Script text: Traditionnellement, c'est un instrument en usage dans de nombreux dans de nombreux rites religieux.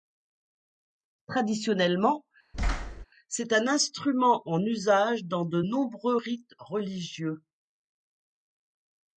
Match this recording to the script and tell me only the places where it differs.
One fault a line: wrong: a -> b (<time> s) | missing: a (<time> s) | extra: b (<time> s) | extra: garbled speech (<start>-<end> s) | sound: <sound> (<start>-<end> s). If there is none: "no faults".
sound: thud (2.5-3.1 s)
missing: dans de nombreux (6.2 s)